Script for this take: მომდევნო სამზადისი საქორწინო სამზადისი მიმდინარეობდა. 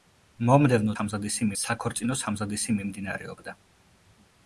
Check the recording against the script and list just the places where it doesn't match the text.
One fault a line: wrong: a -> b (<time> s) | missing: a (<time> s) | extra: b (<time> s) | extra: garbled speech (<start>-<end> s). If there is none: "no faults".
no faults